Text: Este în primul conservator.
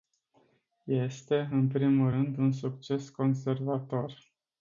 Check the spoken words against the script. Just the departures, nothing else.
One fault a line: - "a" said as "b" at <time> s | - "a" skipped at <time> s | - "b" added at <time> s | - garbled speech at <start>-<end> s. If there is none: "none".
- "rând un succes" added at 2.1 s